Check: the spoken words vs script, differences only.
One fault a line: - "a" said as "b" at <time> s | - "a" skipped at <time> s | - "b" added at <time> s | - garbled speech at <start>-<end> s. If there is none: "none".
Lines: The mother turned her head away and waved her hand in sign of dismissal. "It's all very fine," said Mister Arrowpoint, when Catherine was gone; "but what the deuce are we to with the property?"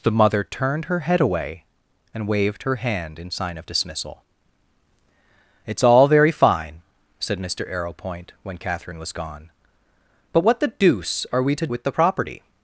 none